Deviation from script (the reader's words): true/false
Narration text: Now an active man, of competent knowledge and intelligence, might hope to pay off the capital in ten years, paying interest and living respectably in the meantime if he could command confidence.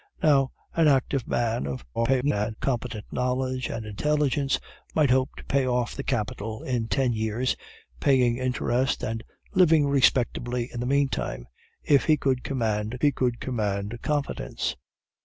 true